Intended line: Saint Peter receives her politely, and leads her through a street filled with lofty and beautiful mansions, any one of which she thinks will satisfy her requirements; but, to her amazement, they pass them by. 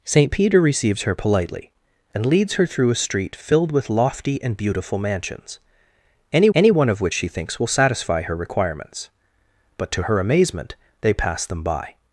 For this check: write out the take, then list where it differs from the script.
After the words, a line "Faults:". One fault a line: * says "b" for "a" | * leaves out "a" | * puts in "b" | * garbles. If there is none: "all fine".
Saint Peter receives her politely, and leads her through a street filled with lofty and beautiful mansions, any any one of which she thinks will satisfy her requirements; but, to her amazement, they pass them by.
Faults:
* puts in "any"